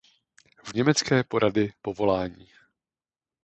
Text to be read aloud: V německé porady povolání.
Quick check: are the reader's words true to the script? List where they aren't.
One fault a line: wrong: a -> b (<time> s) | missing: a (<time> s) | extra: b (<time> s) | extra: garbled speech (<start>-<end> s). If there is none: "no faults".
no faults